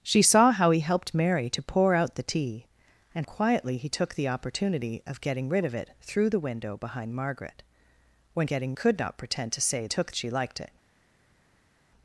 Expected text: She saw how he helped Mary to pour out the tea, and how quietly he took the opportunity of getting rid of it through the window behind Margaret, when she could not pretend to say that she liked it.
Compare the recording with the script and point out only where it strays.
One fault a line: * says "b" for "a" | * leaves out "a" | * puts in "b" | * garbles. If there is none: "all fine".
* leaves out "how"
* says "getting" for "she"
* says "took" for "that"